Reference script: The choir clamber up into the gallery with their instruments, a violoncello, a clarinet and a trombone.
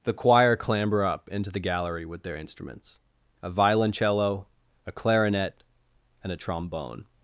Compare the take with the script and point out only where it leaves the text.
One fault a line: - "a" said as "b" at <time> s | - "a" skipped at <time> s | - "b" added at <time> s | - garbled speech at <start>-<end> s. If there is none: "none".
none